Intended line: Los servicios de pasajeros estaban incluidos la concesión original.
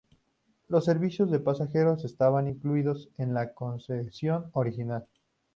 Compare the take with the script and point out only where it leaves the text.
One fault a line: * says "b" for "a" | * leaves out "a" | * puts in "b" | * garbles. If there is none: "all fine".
* puts in "en"